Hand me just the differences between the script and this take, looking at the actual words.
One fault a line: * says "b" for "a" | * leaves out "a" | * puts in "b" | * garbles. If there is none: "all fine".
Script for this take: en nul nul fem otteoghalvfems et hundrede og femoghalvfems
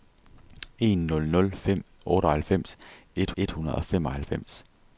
* puts in "et"